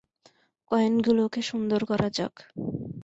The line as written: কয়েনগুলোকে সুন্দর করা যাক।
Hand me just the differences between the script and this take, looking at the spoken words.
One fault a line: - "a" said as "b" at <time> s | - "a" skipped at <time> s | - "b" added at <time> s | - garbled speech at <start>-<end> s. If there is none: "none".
none